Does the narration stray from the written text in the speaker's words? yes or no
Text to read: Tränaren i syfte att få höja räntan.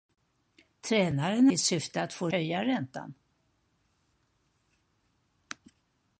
no